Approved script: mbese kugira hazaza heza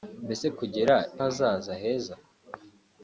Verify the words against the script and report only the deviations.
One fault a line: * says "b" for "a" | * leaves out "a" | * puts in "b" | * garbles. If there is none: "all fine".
all fine